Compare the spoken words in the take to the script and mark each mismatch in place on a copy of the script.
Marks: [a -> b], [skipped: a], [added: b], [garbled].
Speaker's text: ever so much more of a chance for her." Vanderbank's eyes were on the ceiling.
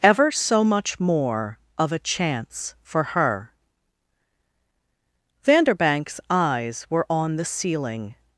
ever so much more of a chance for her." Vanderbank's eyes were on the ceiling.